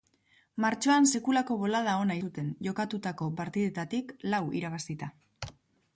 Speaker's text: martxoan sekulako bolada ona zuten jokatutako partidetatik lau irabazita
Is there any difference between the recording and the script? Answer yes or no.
no